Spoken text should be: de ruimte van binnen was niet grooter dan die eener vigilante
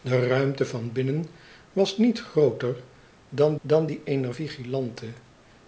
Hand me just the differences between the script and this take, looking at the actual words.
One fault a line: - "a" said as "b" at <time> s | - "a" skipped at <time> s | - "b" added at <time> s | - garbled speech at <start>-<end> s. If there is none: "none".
- "dan" added at 3.6 s